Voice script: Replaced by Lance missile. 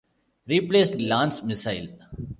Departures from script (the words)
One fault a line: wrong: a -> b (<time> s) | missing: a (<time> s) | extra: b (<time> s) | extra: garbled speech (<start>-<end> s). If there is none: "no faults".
missing: by (1.0 s)